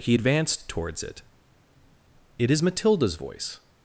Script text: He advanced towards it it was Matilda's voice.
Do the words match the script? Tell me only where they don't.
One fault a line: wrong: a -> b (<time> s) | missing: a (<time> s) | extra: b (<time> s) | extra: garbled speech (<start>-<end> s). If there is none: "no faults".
wrong: was -> is (2.5 s)